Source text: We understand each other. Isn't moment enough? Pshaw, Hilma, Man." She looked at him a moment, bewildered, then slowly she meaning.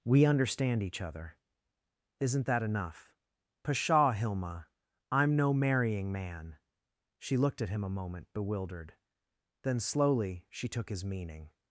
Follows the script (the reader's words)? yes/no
no